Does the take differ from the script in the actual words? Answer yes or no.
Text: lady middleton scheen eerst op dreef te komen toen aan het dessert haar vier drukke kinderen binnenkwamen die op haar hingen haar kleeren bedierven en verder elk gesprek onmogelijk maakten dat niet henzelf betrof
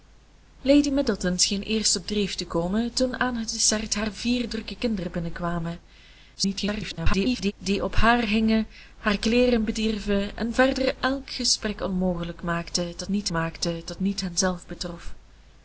yes